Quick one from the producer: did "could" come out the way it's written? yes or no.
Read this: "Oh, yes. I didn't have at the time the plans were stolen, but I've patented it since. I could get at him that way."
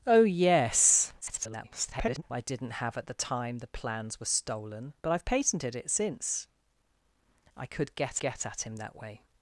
yes